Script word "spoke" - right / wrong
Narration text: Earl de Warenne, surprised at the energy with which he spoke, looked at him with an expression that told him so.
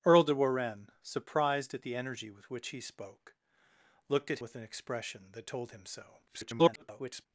right